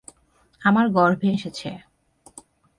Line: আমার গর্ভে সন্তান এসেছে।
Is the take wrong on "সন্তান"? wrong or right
wrong